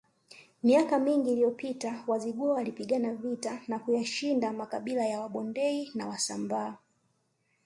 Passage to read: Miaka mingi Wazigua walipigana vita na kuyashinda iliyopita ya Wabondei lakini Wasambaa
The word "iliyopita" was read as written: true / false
false